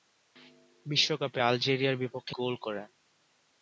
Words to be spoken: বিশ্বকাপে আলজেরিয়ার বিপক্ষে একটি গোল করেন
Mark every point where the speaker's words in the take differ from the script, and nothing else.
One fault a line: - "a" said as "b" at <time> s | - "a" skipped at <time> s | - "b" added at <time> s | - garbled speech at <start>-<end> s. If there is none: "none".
- "একটি" skipped at 2.3 s